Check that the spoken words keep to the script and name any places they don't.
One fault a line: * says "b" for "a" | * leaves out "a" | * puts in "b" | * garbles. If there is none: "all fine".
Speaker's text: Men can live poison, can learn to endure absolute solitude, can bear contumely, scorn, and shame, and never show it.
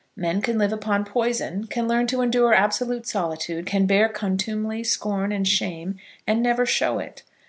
* puts in "upon"